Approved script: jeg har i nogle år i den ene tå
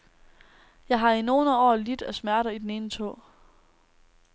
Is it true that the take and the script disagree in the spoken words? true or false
true